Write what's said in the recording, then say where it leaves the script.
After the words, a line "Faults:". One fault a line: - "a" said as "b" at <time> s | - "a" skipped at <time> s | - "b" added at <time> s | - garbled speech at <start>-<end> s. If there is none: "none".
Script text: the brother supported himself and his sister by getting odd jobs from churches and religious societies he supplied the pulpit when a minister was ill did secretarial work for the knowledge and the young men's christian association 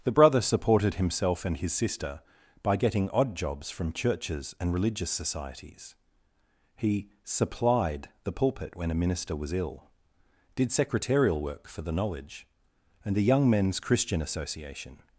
the brother supported himself and his sister by getting odd jobs from churches and religious societies he supplied the pulpit when a minister was ill did secretarial work for the knowledge and the young men's christian association
Faults:
none